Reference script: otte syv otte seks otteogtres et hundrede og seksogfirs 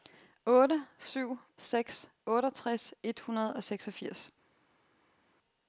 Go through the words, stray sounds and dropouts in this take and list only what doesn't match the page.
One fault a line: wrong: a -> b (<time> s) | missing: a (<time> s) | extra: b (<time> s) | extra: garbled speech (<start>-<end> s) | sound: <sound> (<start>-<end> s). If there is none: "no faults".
missing: otte (1.4 s)